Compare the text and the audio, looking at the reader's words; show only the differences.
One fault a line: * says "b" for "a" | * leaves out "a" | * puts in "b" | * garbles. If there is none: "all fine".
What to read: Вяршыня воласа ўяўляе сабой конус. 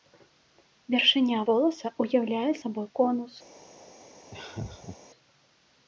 all fine